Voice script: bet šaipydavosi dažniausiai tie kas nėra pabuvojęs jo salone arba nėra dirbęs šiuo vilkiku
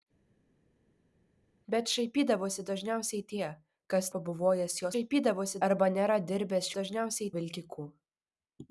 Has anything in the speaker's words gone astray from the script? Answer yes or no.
yes